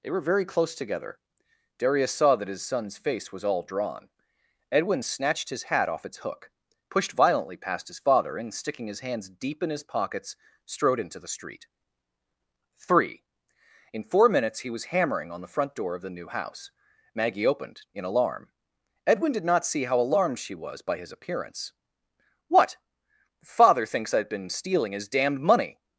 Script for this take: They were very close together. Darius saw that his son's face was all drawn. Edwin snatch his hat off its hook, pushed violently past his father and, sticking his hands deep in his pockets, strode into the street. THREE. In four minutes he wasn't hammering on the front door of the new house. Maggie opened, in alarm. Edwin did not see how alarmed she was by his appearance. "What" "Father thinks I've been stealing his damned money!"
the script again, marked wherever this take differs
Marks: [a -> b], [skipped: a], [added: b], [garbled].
They were very close together. Darius saw that his son's face was all drawn. Edwin [snatch -> snatched] his hat off its hook, pushed violently past his father and, sticking his hands deep in his pockets, strode into the street. THREE. In four minutes he [wasn't -> was] hammering on the front door of the new house. Maggie opened, in alarm. Edwin did not see how alarmed she was by his appearance. "What" "Father thinks I've been stealing his damned money!"